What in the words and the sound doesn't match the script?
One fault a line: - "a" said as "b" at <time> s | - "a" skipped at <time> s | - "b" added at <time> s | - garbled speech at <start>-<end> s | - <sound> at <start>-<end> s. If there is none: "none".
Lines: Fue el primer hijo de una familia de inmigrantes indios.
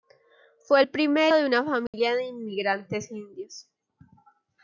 - "hijo" skipped at 1.3 s
- dropout at 1.9-1.9 s